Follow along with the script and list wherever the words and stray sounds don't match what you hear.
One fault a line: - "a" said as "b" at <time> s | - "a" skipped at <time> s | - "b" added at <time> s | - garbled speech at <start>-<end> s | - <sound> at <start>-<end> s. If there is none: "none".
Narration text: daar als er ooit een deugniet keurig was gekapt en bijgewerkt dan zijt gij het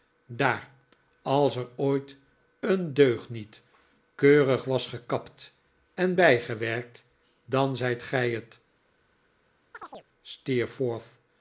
- chirp at 9.7-10.1 s